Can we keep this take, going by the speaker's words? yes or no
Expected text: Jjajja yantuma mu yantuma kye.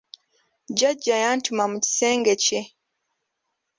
no